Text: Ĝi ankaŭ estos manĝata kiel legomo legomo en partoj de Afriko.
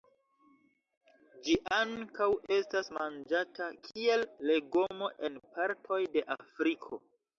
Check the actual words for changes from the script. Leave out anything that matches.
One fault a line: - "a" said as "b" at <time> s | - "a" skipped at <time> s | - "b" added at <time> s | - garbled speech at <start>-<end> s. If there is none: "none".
- "estos" said as "estas" at 2.6 s
- "legomo" skipped at 5.1 s